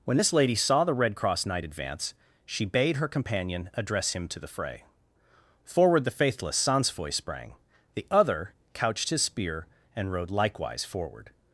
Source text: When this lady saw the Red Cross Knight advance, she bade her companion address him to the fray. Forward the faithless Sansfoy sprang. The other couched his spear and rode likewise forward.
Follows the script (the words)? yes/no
yes